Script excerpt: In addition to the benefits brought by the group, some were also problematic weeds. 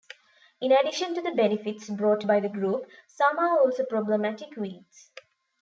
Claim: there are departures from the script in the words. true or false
true